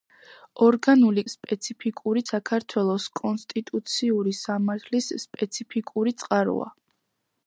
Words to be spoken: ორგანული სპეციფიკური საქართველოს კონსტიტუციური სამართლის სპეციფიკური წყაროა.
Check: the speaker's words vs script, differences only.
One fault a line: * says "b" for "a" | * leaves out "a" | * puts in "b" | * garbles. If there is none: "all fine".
all fine